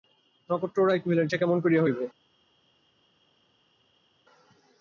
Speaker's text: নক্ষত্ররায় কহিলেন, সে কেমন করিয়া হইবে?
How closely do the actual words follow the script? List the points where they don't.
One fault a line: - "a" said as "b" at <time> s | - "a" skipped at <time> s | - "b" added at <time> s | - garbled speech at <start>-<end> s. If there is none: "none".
none